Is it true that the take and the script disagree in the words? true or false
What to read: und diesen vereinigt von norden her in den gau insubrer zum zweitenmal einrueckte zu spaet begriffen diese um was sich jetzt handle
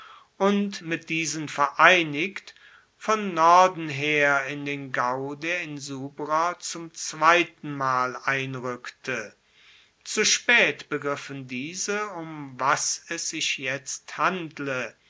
true